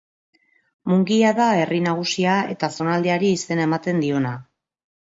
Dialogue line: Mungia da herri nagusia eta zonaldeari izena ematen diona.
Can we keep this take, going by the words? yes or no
yes